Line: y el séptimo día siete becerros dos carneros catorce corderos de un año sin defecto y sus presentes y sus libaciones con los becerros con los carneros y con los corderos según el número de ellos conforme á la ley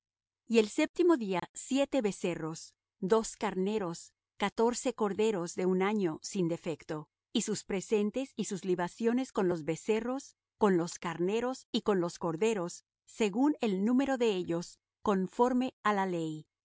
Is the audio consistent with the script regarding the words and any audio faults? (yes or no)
no